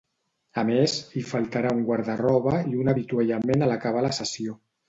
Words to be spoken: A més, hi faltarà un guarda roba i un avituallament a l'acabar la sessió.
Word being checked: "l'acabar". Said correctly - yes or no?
yes